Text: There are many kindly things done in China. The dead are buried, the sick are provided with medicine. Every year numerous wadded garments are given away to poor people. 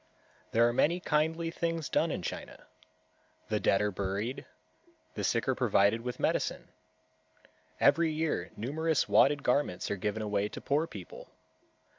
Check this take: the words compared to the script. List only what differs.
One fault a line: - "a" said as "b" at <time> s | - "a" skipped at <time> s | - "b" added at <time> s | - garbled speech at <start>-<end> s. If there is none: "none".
none